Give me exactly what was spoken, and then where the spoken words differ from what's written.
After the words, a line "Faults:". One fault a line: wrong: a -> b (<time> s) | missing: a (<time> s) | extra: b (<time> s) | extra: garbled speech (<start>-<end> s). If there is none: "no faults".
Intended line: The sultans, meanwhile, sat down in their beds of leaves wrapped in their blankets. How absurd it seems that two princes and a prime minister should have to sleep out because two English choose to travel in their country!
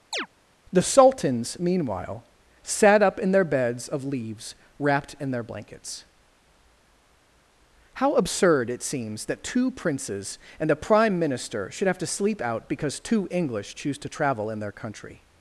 The sultans, meanwhile, sat up in their beds of leaves wrapped in their blankets. How absurd it seems that two princes and a prime minister should have to sleep out because two English choose to travel in their country!
Faults:
wrong: down -> up (3.0 s)